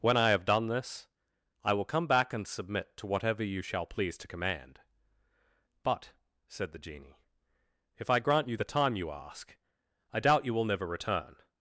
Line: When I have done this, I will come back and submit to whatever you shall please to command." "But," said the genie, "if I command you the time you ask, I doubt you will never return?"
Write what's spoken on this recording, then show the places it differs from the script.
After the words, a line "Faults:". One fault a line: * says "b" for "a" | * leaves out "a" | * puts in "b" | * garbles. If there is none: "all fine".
When I have done this, I will come back and submit to whatever you shall please to command." "But," said the genie, "if I grant you the time you ask, I doubt you will never return?"
Faults:
* says "grant" for "command"